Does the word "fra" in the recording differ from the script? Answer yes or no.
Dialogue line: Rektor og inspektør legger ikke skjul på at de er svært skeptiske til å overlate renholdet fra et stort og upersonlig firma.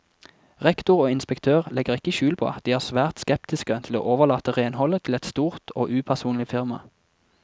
yes